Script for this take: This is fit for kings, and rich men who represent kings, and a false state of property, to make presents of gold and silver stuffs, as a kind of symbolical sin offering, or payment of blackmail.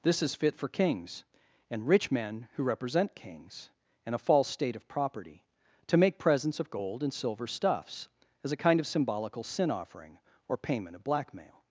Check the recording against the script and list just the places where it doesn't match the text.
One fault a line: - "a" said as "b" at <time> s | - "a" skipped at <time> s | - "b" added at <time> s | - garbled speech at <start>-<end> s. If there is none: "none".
none